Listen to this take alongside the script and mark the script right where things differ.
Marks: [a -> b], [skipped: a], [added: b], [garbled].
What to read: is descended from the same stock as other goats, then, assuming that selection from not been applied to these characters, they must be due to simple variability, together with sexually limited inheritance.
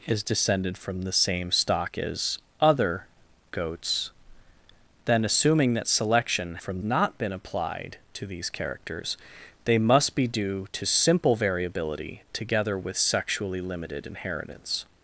is descended from the same stock as other goats, then, assuming that selection from not been applied to these characters, they must be due to simple variability, together with sexually limited inheritance.